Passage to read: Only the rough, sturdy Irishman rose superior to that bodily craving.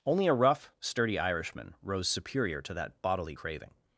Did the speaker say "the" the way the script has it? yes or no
no